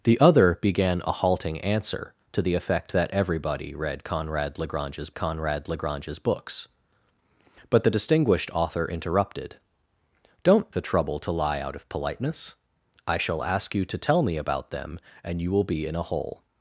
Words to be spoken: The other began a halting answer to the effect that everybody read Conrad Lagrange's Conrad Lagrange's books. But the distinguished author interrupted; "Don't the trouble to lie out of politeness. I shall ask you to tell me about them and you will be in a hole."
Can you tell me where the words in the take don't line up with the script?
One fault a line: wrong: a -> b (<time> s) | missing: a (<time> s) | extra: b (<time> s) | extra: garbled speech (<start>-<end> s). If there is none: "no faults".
no faults